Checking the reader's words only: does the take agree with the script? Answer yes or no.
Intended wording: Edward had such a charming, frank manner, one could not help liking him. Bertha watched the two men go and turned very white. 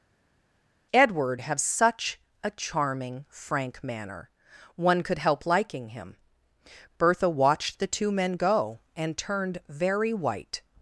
no